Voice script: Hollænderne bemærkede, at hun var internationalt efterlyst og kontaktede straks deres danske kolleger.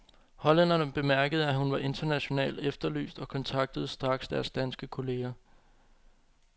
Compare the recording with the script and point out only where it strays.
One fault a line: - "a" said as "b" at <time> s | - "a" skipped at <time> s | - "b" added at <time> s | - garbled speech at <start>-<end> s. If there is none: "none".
none